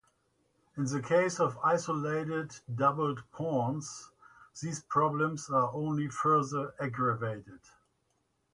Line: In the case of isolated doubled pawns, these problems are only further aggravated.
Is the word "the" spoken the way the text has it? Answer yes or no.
yes